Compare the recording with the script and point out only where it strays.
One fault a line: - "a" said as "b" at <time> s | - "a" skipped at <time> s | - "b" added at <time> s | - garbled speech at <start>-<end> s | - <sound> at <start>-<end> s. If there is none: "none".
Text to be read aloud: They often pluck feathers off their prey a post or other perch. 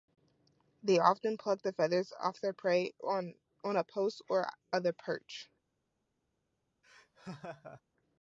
- "the" added at 1.6 s
- "on" added at 3.0 s
- laugh at 6.8-7.8 s